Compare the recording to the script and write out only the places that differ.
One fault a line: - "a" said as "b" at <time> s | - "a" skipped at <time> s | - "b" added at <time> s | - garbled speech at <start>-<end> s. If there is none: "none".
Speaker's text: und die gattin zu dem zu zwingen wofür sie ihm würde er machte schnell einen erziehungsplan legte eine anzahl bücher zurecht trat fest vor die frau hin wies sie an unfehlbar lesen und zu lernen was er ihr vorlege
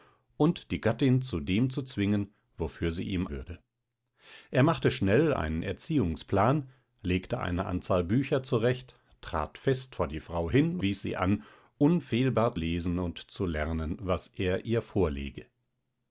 none